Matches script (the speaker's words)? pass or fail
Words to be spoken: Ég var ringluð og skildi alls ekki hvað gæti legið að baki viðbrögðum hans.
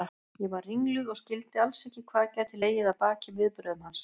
pass